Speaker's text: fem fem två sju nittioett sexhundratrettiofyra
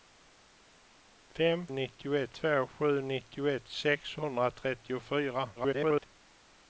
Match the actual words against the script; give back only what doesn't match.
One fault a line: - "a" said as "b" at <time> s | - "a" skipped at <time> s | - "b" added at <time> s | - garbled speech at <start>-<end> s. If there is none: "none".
- "fem" said as "nittioett" at 1.7 s
- garbled speech at 5.6-6.1 s